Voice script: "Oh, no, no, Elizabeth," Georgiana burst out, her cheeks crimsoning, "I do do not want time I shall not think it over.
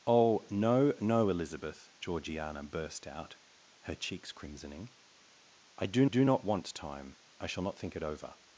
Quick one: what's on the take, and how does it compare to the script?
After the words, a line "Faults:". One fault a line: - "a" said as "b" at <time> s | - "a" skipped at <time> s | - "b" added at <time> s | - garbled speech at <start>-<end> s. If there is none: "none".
"Oh, no, no, Elizabeth," Georgiana burst out, her cheeks crimsoning, "I do do not want time I shall not think it over.
Faults:
none